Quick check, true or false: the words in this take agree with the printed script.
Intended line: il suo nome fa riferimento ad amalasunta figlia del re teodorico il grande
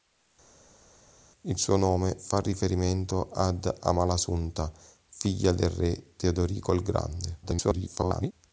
false